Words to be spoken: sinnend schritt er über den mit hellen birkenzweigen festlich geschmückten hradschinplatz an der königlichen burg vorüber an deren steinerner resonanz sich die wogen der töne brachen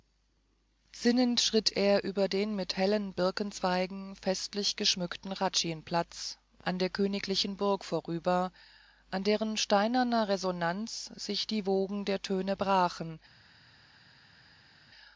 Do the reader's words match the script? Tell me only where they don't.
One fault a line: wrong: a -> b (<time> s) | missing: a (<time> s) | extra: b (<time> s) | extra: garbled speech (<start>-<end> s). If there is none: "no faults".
no faults